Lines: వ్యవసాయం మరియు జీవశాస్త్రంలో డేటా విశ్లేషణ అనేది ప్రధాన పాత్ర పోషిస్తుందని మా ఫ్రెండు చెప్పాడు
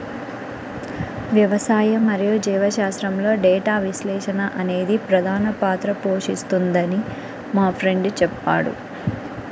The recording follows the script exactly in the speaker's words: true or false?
true